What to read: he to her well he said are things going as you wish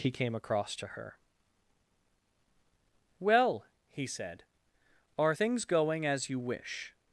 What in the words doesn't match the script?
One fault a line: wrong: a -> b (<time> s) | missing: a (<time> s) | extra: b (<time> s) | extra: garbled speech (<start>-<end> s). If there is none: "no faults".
extra: came across (0.1 s)